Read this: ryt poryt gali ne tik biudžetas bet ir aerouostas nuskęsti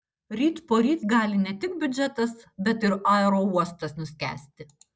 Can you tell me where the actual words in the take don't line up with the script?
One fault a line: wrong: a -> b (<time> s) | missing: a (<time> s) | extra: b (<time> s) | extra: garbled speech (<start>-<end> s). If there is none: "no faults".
no faults